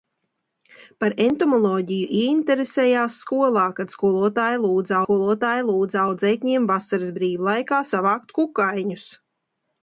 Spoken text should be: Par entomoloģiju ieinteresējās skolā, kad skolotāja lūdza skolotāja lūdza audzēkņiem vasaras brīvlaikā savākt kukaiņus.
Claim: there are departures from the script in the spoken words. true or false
false